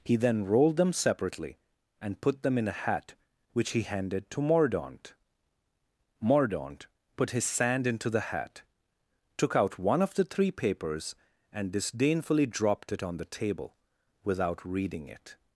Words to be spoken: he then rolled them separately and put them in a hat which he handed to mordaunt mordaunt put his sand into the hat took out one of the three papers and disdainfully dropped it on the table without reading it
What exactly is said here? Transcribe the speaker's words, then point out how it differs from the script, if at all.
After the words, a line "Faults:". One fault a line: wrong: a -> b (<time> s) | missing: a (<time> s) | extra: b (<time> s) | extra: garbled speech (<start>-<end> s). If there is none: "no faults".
he then rolled them separately and put them in a hat which he handed to mordaunt mordaunt put his sand into the hat took out one of the three papers and disdainfully dropped it on the table without reading it
Faults:
no faults